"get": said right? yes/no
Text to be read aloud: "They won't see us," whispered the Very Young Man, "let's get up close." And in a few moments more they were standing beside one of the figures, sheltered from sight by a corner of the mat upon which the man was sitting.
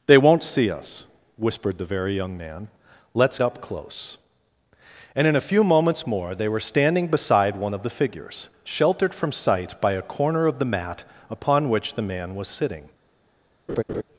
no